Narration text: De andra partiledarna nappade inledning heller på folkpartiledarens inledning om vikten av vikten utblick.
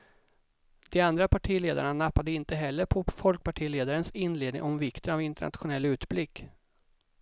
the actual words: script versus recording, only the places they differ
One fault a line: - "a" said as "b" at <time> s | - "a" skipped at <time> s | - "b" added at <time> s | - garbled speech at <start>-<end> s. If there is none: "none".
- "inledning" said as "inte" at 2.3 s
- "vikten" said as "internationell" at 5.2 s